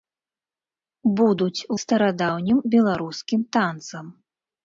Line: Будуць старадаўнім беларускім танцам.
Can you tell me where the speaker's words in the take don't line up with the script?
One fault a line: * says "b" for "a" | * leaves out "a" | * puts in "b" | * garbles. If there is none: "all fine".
all fine